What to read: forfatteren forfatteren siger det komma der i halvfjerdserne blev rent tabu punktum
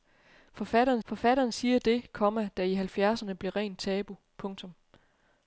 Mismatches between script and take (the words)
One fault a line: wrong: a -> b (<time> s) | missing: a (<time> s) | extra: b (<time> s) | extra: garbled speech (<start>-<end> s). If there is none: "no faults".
no faults